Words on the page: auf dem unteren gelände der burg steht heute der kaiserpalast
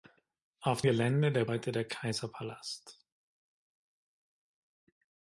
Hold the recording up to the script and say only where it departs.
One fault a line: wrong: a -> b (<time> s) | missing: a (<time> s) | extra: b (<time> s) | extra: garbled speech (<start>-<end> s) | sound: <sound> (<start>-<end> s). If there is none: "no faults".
missing: dem unteren (0.8 s)
missing: burg steht (1.5 s)